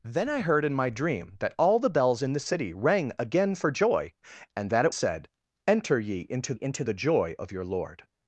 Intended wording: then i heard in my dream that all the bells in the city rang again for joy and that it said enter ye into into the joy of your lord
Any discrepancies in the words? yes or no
no